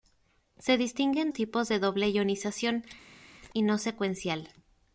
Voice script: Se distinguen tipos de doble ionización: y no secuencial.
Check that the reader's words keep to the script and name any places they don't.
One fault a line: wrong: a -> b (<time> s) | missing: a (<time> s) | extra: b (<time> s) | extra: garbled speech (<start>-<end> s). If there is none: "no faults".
no faults